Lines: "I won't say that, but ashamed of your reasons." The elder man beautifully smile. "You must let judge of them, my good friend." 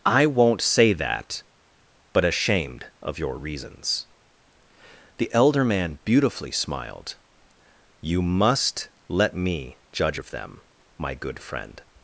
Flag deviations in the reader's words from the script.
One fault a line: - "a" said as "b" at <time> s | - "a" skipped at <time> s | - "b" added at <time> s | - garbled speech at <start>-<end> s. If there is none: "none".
- "smile" said as "smiled" at 6.5 s
- "me" added at 9.3 s